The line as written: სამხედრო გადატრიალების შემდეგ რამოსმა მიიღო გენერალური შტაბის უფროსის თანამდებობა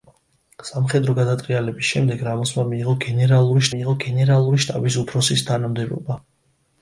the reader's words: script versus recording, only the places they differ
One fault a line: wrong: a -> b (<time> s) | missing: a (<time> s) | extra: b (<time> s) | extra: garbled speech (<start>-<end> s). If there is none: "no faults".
extra: მიიღო გენერალური (3.7 s)